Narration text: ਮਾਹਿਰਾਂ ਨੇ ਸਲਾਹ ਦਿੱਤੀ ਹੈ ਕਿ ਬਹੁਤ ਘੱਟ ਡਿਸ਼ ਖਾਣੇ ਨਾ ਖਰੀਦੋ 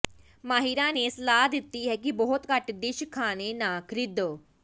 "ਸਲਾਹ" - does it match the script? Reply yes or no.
yes